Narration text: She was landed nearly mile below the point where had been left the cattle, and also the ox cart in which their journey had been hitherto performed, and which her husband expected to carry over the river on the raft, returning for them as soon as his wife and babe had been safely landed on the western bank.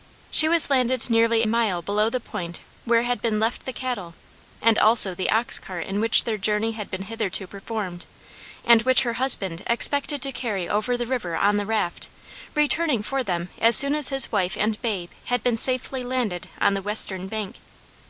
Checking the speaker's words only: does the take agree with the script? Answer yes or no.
yes